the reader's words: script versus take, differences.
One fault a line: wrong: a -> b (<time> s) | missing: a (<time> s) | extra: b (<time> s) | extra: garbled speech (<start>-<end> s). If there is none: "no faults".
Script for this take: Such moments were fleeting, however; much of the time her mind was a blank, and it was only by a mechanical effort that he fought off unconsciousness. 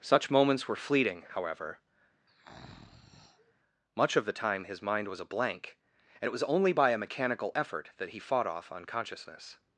wrong: her -> his (4.7 s)